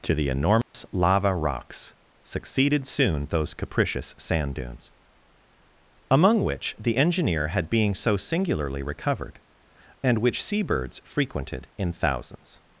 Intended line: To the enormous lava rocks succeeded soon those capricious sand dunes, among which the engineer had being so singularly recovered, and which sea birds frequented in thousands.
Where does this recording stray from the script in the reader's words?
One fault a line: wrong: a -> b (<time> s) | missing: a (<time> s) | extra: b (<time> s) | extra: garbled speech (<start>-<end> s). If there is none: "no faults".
no faults